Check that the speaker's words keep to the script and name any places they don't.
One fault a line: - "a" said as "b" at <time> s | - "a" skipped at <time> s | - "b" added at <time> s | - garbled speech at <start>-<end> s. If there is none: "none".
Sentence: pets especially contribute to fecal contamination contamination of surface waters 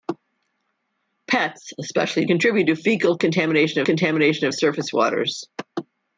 none